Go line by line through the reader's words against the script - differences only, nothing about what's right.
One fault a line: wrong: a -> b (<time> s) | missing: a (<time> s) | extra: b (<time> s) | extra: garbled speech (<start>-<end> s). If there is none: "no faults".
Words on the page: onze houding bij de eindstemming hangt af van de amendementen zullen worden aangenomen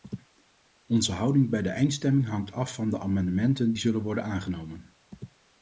no faults